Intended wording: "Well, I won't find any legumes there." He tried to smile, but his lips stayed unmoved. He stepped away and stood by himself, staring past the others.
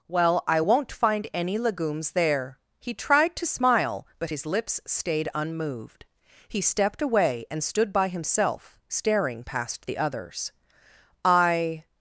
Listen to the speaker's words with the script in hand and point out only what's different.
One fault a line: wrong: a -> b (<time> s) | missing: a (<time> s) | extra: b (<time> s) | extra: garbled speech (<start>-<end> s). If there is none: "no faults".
extra: I (11.2 s)